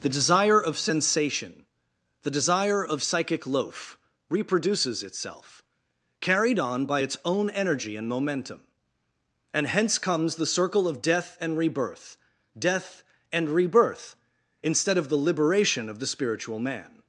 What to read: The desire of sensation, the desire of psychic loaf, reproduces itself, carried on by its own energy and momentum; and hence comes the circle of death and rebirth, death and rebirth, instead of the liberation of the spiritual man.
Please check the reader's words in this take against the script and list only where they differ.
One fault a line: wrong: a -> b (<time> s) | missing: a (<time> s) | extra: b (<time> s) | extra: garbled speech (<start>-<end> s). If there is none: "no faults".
no faults